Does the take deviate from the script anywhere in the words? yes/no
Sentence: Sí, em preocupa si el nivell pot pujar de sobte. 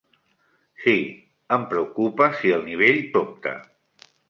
yes